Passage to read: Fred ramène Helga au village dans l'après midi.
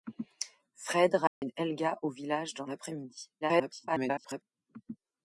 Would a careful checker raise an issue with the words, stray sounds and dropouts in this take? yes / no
yes